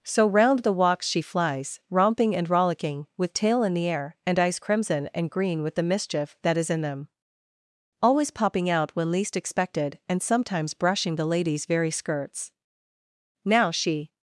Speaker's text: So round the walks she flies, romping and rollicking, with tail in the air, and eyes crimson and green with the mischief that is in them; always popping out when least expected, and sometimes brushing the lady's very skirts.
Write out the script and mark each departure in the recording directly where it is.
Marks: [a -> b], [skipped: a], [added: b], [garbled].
So round the walks she flies, romping and rollicking, with tail in the air, and eyes crimson and green with the mischief that is in them; always popping out when least expected, and sometimes brushing the lady's very skirts. [added: Now she]